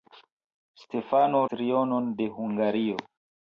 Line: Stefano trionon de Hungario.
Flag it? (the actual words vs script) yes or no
no